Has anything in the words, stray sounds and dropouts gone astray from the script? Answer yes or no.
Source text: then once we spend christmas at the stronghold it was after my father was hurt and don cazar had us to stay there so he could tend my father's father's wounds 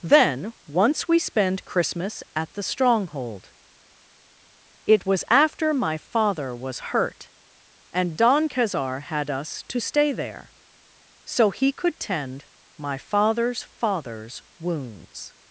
no